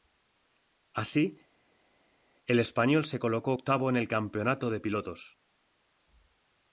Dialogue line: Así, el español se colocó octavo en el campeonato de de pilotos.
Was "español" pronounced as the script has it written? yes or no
yes